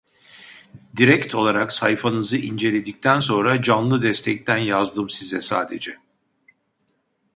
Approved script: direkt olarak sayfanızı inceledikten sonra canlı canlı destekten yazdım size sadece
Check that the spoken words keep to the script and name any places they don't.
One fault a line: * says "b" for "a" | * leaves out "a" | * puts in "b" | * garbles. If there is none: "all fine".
* leaves out "canlı"